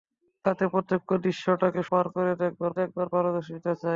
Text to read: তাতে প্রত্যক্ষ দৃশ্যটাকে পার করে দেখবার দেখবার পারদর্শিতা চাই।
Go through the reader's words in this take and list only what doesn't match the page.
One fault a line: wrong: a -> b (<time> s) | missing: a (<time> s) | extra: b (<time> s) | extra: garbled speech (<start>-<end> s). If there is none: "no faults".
no faults